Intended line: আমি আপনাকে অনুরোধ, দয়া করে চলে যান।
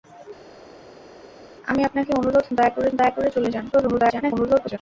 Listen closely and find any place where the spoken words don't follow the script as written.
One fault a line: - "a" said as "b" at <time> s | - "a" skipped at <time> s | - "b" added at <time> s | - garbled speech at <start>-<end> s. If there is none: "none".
- "দয়া করে" added at 2.9 s
- garbled speech at 3.7-4.8 s